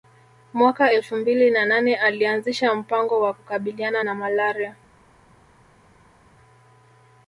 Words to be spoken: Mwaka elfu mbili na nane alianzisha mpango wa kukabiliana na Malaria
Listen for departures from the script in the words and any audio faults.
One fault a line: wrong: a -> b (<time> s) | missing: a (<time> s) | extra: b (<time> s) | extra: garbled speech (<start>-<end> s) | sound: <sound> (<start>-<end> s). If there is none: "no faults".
no faults